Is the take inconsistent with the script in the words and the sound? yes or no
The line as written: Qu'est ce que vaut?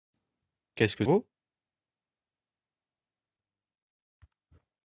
no